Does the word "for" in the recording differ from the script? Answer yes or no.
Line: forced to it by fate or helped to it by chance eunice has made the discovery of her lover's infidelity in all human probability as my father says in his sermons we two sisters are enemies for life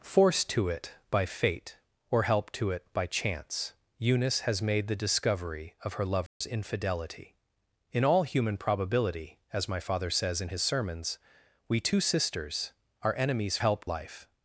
yes